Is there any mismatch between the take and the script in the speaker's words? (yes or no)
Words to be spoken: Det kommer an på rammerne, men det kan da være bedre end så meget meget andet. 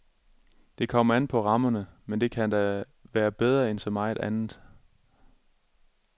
yes